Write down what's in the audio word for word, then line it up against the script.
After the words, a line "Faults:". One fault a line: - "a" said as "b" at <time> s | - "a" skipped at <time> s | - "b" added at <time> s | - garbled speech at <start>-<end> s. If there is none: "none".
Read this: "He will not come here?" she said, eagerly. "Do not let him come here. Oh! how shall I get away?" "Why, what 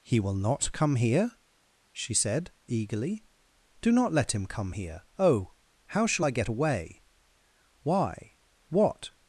"He will not come here?" she said, eagerly. "Do not let him come here. Oh! how shall I get away?" "Why, what
Faults:
none